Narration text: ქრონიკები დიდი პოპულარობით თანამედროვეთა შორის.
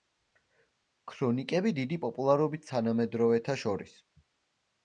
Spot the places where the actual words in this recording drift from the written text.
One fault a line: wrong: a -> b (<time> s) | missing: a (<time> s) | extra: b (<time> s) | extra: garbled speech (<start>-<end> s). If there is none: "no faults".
no faults